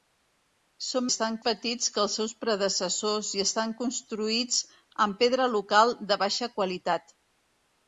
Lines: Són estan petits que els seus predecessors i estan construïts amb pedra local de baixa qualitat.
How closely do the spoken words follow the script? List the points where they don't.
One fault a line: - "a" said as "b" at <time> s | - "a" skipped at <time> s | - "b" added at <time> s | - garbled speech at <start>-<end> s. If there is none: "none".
none